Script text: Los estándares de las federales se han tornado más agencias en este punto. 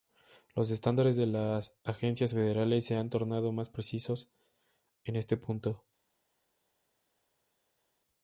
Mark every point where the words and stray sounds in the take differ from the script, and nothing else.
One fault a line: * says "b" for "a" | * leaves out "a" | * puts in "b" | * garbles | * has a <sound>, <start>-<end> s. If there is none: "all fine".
* puts in "agencias"
* says "precisos" for "agencias"